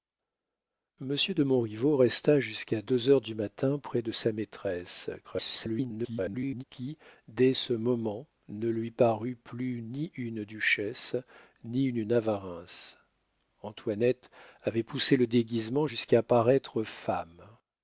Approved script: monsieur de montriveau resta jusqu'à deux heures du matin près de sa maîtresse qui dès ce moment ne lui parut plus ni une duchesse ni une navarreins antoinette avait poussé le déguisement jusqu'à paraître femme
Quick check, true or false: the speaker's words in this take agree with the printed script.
false